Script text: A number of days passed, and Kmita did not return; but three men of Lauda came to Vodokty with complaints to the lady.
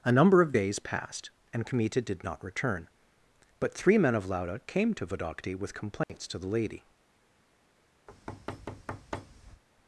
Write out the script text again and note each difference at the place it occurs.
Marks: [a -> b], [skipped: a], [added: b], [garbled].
A number of days passed, and Kmita did not return; but three men of Lauda came to Vodokty with complaints to the lady.